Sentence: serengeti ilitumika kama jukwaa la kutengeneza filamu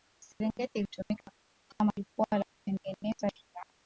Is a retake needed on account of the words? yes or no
no